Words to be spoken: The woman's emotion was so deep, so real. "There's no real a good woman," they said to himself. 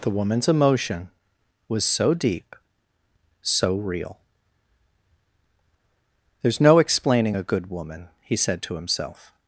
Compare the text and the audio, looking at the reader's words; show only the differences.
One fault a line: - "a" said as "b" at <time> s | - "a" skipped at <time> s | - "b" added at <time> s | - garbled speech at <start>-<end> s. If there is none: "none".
- "real" said as "explaining" at 6.8 s
- "they" said as "he" at 8.2 s